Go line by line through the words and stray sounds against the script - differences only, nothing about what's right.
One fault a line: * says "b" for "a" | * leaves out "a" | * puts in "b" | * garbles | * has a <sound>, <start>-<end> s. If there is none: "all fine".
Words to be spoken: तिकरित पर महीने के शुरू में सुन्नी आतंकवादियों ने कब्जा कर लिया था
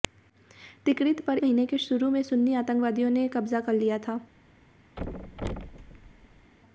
* has a thud, 5.0-6.5 s